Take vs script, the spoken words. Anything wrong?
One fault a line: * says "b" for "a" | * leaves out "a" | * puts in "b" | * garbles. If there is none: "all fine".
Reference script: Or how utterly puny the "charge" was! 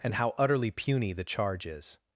* says "And" for "Or"
* says "is" for "was"